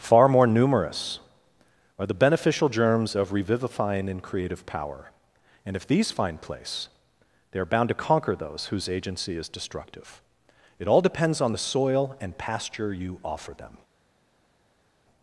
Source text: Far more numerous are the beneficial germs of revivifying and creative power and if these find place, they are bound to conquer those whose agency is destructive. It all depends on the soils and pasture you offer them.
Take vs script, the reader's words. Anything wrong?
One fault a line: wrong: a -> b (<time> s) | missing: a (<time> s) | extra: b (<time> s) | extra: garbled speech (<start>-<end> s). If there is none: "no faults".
wrong: soils -> soil (11.6 s)